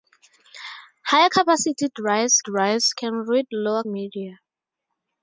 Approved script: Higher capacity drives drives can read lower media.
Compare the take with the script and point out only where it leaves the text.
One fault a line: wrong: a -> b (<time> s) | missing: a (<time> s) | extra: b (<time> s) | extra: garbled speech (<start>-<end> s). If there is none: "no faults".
no faults